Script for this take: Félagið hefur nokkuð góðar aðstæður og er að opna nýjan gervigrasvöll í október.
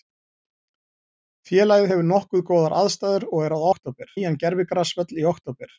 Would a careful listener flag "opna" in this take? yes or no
yes